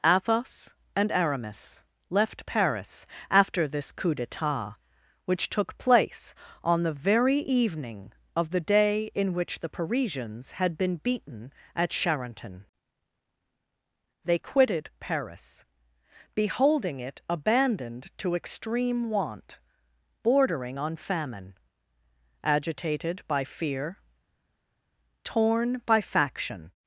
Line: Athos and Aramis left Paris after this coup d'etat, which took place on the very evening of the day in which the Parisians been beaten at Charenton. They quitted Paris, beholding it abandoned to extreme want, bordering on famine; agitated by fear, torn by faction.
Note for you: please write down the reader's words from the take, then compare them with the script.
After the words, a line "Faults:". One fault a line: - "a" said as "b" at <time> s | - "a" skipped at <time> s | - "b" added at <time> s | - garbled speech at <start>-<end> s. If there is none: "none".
Athos and Aramis left Paris after this coup d'etat, which took place on the very evening of the day in which the Parisians had been beaten at Charenton. They quitted Paris, beholding it abandoned to extreme want, bordering on famine; agitated by fear, torn by faction.
Faults:
- "had" added at 10.5 s